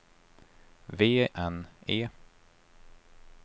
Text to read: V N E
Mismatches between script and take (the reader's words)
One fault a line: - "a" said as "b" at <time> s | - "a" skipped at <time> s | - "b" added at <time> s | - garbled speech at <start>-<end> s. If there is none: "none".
none